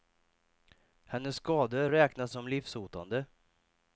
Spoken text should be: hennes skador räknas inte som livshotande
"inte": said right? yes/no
no